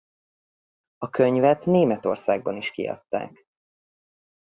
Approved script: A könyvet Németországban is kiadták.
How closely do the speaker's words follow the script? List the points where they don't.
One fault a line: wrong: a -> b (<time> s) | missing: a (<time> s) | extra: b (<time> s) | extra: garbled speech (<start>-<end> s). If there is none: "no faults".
no faults